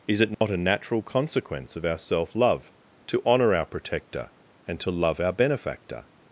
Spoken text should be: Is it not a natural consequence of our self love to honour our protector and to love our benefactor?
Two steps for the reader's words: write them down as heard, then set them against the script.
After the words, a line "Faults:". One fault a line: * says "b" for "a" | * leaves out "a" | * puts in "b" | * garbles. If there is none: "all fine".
Is it not a natural consequence of our self love to honour our protector and to love our benefactor?
Faults:
all fine